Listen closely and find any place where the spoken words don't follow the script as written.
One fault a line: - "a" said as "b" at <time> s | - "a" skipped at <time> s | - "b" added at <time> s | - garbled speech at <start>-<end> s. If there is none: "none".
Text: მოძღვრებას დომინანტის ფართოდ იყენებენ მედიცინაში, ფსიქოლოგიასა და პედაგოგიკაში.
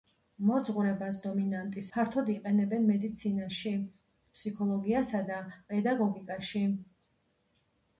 none